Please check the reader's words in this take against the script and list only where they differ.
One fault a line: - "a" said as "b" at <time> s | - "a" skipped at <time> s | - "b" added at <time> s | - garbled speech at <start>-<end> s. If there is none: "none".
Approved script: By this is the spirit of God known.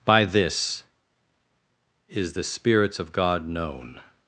- "spirit" said as "spirits" at 2.4 s